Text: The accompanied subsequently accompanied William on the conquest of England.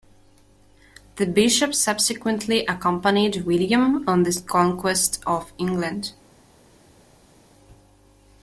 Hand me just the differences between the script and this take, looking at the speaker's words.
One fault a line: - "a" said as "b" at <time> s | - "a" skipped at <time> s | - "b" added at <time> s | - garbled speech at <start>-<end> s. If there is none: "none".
- "accompanied" said as "bishop" at 1.3 s